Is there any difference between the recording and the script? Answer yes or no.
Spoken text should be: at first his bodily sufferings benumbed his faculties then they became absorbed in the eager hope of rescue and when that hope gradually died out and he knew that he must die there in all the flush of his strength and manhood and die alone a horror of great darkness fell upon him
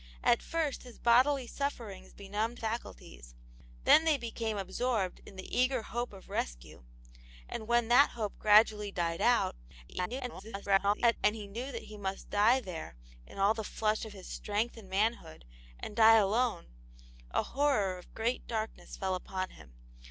yes